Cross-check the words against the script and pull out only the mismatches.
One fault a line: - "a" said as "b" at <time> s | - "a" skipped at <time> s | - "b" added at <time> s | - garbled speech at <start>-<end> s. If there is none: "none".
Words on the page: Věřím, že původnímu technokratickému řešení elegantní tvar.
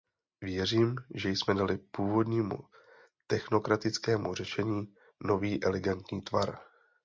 - "jsme dali" added at 1.3 s
- "nový" added at 5.2 s